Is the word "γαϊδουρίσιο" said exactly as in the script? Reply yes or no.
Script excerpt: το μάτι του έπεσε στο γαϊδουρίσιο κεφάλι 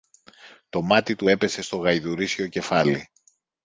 yes